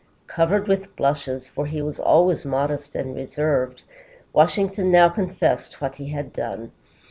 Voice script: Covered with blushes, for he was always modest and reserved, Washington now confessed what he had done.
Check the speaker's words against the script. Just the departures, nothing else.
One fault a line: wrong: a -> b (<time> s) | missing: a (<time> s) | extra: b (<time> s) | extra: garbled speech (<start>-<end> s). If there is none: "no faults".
no faults